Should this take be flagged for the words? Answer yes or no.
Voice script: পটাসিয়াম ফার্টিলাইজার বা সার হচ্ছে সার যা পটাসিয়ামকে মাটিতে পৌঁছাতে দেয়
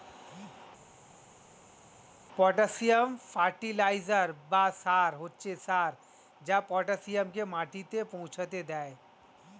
no